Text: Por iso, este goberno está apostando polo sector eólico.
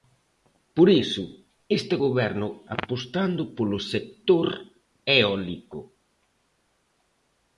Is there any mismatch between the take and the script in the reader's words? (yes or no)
yes